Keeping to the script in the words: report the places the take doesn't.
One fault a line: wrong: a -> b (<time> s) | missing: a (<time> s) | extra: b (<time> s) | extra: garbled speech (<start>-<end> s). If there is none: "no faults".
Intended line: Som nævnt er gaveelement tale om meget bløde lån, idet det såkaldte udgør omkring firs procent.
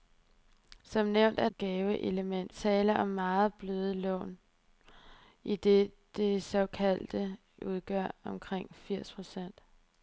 no faults